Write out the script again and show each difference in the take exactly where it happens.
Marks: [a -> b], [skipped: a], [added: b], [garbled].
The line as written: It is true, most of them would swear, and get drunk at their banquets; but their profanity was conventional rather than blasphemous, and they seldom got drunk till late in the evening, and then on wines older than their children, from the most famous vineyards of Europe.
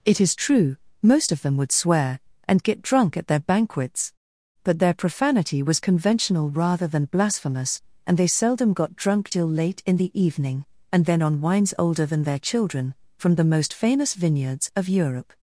It is true, most of them would swear, and get drunk at their banquets; but their profanity was conventional rather than blasphemous, and they seldom got drunk till late in the evening, and then on wines older than their children, from the most famous vineyards of Europe.